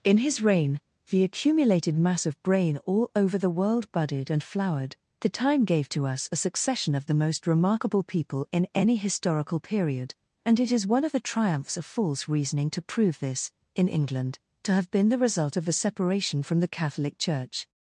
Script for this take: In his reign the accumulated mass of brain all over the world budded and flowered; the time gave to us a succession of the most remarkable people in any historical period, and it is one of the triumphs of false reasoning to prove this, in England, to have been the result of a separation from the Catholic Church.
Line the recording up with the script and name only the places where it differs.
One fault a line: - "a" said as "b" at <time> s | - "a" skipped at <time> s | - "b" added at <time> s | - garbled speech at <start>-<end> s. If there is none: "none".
none